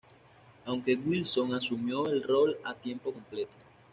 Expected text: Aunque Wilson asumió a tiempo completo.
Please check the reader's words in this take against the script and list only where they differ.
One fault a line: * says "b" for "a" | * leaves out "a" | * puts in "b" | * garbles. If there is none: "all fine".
* puts in "el rol"